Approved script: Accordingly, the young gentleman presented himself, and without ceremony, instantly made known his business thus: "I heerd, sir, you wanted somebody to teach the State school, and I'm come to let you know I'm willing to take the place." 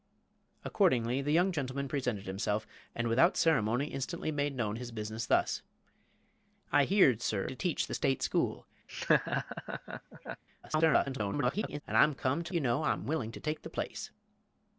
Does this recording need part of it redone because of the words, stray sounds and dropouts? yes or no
yes